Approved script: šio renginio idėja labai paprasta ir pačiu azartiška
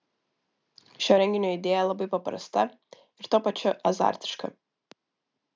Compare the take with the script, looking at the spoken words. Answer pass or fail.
fail